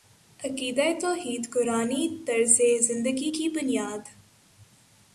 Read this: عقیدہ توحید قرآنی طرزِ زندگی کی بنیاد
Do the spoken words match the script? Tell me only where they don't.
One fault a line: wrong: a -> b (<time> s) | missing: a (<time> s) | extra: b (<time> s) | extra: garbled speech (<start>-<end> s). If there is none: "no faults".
no faults